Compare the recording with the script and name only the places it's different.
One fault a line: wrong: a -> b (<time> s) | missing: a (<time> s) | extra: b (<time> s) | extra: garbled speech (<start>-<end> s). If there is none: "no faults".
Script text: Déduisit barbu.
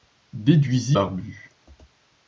no faults